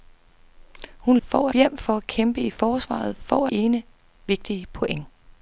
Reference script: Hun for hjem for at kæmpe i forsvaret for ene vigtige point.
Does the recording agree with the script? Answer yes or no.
yes